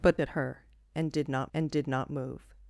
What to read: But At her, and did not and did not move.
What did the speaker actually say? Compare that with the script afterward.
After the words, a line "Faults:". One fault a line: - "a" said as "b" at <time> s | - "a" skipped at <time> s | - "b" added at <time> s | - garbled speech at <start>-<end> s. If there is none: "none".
But At her, and did not and did not move.
Faults:
none